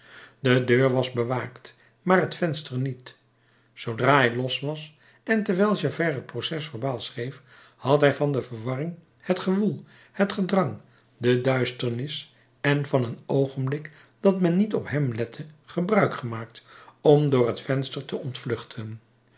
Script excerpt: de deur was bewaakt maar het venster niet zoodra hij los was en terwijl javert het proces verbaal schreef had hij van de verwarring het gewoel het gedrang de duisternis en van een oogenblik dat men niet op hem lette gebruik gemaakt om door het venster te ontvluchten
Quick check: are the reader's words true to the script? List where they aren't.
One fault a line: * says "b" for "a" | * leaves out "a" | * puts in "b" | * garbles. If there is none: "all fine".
all fine